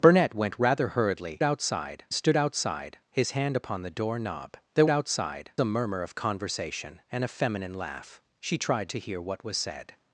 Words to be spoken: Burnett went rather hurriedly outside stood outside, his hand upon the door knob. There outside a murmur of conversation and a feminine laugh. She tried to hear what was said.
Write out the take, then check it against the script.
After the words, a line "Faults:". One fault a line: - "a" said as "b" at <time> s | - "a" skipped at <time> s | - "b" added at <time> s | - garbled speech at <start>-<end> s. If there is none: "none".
Burnett went rather hurriedly outside stood outside, his hand upon the door knob. There outside a murmur of conversation and a feminine laugh. She tried to hear what was said.
Faults:
none